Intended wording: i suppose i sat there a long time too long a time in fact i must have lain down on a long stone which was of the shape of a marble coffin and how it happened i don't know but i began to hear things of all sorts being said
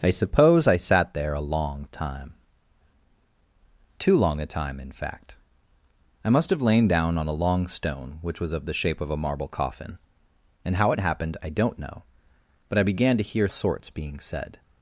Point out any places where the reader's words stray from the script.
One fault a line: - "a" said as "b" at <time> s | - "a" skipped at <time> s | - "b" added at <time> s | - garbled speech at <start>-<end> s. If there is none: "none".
- "things of all" skipped at 13.5 s